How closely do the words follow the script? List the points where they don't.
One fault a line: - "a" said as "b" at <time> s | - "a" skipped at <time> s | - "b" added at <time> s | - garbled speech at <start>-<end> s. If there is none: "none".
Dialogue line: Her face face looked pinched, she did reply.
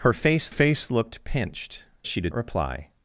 none